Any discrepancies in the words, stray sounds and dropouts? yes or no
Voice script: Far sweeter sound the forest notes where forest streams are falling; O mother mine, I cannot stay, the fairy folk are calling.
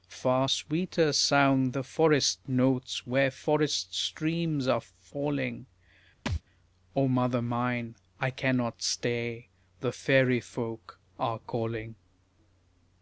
yes